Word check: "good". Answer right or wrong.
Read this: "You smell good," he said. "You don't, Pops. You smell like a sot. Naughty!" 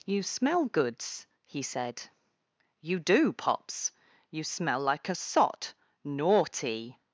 wrong